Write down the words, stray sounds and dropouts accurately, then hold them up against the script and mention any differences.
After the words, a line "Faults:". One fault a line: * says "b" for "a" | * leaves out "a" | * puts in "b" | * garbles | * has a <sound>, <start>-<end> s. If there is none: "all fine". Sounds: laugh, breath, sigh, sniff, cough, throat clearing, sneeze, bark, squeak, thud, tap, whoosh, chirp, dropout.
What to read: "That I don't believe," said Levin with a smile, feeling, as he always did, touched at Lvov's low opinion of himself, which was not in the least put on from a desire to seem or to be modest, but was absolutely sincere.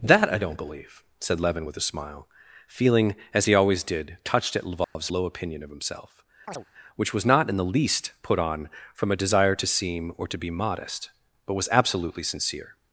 "That I don't believe," said Levin with a smile, feeling, as he always did, touched at Lvov's low opinion of himself, which was not in the least put on from a desire to seem or to be modest, but was absolutely sincere.
Faults:
* has a dropout, 4.8-5.0 s
* has a chirp, 6.5-6.7 s